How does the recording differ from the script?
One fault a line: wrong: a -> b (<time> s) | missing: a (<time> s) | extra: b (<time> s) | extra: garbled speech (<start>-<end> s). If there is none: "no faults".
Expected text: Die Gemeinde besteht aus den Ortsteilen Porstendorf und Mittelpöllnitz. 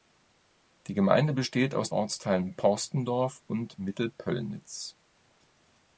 missing: den (1.9 s)